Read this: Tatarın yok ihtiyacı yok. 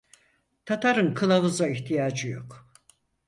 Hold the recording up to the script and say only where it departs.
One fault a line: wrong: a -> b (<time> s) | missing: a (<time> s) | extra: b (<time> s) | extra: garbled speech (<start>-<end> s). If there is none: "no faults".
wrong: yok -> kılavuza (1.1 s)